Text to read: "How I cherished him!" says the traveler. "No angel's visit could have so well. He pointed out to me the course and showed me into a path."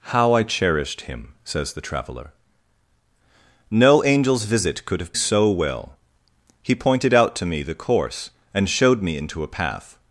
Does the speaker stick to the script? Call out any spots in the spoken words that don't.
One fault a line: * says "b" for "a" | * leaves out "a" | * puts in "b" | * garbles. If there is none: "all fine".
all fine